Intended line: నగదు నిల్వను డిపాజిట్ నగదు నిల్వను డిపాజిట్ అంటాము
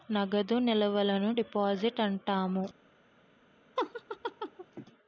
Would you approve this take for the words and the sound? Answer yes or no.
no